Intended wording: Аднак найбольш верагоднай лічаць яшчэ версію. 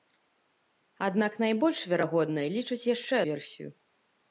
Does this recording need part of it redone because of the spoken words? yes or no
no